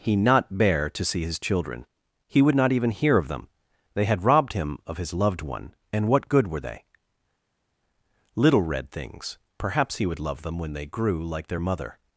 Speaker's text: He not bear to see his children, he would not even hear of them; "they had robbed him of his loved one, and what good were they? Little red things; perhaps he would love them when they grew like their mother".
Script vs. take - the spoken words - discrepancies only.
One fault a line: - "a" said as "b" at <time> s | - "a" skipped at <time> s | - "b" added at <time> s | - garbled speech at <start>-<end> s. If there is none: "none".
none